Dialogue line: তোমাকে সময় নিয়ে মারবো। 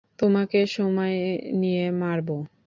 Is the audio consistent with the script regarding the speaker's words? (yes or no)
yes